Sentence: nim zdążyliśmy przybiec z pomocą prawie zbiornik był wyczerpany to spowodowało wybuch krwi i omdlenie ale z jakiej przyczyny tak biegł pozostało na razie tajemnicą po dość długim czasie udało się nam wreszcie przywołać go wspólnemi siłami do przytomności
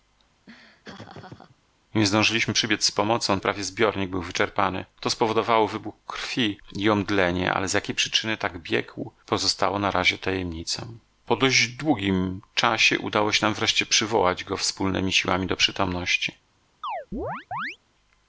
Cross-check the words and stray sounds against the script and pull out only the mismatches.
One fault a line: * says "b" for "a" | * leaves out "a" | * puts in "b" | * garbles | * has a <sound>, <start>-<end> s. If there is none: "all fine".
* has a laugh, 0.5-1.6 s
* has a chirp, 16.8-17.8 s